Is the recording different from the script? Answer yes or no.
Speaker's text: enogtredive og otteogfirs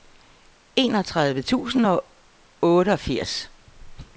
yes